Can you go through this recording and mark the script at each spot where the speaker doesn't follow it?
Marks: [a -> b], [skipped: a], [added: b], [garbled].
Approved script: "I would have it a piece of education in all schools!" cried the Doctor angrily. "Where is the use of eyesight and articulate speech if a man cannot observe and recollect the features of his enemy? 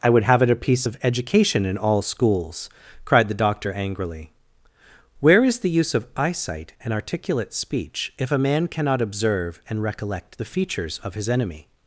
"I would have it a piece of education in all schools!" cried the Doctor angrily. "Where is the use of eyesight and articulate speech if a man cannot observe and recollect the features of his enemy?